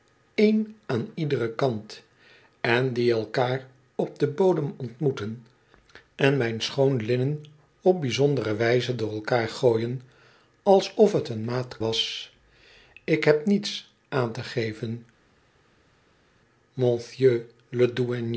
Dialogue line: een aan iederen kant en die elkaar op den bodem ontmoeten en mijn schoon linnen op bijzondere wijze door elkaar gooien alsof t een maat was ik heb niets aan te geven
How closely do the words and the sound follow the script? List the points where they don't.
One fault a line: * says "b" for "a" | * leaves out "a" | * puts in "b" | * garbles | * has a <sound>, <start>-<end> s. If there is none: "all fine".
all fine